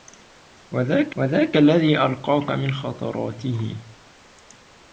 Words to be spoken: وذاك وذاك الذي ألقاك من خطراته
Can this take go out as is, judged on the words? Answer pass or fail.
pass